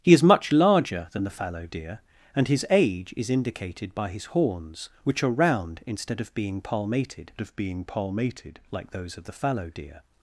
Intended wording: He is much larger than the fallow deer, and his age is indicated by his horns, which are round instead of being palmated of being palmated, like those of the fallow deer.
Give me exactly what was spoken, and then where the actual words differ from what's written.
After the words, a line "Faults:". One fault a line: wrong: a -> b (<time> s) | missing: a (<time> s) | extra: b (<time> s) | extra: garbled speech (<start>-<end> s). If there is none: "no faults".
He is much larger than the fallow deer, and his age is indicated by his horns, which are round instead of being palmated of being palmated, like those of the fallow deer.
Faults:
no faults